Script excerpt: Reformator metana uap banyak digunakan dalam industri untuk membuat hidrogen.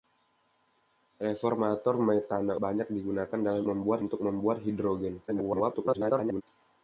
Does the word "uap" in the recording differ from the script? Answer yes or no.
yes